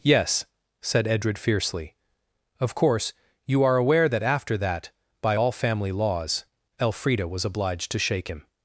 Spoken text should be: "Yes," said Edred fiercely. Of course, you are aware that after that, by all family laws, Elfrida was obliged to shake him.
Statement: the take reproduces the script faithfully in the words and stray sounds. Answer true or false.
true